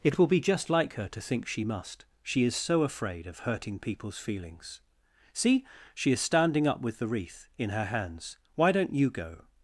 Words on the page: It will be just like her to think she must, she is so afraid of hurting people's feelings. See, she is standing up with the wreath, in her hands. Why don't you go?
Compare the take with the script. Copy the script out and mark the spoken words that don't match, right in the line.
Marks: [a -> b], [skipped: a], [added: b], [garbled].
It will be just like her to think she must, she is so afraid of hurting people's feelings. See, she is standing up with the wreath, in her hands. Why don't you go?